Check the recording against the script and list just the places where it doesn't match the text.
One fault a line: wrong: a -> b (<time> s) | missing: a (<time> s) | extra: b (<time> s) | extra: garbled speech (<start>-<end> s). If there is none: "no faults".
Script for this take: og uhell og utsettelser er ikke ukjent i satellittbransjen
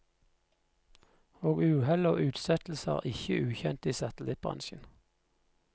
no faults